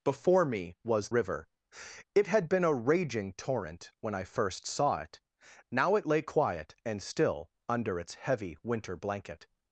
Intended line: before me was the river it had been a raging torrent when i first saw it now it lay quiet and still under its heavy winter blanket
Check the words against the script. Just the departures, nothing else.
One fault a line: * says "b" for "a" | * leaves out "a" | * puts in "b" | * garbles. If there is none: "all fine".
* leaves out "the"